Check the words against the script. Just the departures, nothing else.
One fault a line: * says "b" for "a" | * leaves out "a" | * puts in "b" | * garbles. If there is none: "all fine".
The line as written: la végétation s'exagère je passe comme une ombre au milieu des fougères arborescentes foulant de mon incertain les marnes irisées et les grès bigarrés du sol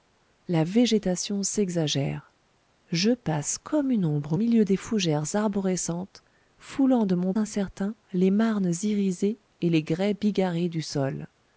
all fine